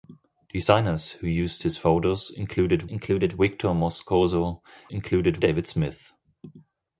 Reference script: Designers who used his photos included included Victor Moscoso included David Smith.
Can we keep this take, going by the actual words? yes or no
yes